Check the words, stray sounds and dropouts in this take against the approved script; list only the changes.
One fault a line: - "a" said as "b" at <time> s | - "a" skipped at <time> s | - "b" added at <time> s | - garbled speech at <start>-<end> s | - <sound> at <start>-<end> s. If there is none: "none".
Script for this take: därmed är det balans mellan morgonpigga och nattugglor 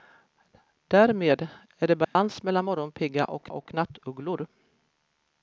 - dropout at 2.0-2.2 s
- "och" added at 3.5 s